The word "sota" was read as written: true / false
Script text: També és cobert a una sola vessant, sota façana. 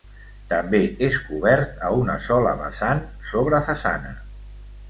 false